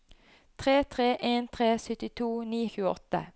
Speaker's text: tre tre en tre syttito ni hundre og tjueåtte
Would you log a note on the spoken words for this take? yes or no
yes